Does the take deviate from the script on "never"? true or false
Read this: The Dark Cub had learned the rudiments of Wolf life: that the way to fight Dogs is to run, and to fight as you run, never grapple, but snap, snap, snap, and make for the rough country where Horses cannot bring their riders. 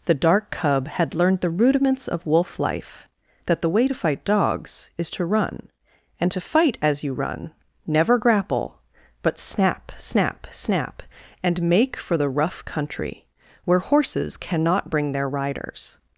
false